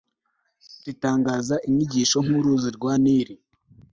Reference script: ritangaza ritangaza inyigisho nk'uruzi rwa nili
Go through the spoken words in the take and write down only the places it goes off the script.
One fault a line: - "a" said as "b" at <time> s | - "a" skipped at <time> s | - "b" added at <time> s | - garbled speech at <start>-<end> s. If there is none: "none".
- "ritangaza" skipped at 1.6 s